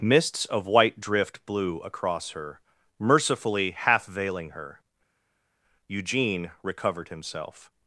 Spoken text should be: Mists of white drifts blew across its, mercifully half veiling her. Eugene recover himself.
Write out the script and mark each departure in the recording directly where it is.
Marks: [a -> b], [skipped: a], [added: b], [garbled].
Mists of white [drifts -> drift] blew across [its, -> her] mercifully half veiling her. Eugene [recover -> recovered] himself.